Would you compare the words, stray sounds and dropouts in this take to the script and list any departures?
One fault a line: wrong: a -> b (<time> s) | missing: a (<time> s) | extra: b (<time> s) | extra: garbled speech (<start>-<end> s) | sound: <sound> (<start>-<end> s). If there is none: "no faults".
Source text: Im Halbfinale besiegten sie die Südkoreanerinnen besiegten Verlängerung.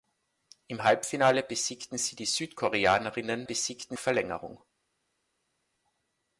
no faults